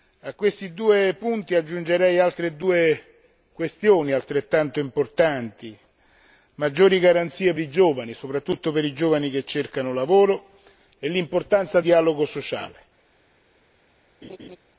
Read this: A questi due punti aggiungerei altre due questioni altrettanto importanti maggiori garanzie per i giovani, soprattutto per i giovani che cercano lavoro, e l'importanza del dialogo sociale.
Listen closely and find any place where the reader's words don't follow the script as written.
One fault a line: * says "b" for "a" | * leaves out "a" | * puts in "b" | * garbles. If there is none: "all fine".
* leaves out "per"
* leaves out "del"